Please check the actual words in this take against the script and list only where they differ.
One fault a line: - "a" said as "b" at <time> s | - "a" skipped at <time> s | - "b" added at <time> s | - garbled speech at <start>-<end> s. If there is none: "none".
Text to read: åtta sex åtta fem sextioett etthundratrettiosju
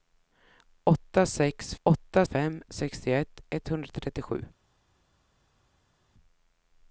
none